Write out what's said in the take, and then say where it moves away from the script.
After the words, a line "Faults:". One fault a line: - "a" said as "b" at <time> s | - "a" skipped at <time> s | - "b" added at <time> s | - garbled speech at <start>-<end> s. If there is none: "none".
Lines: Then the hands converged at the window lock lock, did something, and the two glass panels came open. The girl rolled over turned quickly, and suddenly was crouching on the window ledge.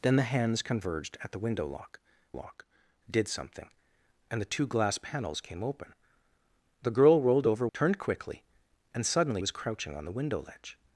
Then the hands converged at the window lock lock, did something, and the two glass panels came open. The girl rolled over turned quickly, and suddenly was crouching on the window ledge.
Faults:
none